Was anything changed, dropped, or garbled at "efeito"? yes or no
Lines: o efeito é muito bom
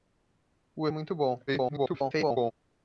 yes